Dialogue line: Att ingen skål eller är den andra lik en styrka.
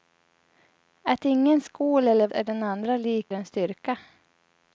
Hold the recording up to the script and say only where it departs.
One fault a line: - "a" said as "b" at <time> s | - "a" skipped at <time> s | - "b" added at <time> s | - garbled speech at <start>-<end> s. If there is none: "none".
none